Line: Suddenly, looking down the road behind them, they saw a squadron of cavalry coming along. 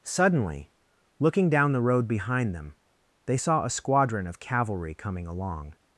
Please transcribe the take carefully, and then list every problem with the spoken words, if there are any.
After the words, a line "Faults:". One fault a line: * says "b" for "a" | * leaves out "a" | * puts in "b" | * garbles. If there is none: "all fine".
Suddenly, looking down the road behind them, they saw a squadron of cavalry coming along.
Faults:
all fine